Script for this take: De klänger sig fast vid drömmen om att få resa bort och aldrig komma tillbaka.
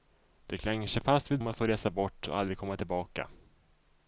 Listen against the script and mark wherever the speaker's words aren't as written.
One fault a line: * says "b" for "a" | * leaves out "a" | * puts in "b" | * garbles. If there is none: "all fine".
* leaves out "drömmen"